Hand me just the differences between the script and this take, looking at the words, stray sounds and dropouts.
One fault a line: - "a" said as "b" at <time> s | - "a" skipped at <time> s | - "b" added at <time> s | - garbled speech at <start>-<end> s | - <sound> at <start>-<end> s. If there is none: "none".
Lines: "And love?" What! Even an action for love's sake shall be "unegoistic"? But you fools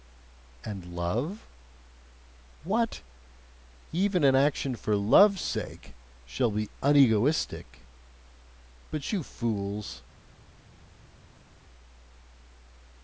none